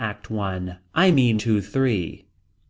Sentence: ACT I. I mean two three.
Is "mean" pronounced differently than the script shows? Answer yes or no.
no